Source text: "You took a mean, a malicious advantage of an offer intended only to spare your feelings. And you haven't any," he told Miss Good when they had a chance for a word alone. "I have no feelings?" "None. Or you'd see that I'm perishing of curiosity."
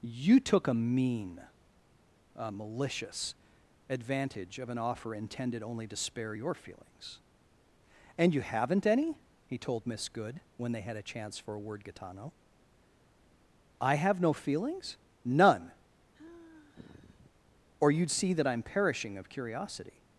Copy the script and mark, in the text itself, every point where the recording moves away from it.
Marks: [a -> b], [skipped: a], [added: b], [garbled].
"You took a mean, a malicious advantage of an offer intended only to spare your feelings. And you haven't any," he told Miss Good when they had a chance for a word [alone. -> gitano] "I have no feelings?" "None. Or you'd see that I'm perishing of curiosity."